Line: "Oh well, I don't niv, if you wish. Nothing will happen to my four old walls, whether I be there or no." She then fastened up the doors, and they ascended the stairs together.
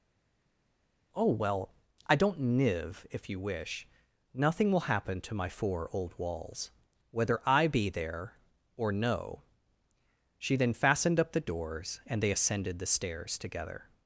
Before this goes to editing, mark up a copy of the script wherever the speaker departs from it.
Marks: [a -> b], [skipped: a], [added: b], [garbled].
"Oh well, I don't niv, if you wish. Nothing will happen to my four old walls, whether I be there or no." She then fastened up the doors, and they ascended the stairs together.